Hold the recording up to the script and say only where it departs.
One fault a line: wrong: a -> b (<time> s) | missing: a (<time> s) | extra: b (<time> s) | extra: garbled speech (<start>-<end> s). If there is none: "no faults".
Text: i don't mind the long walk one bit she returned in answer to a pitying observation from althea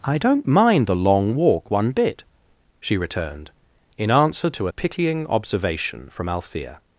no faults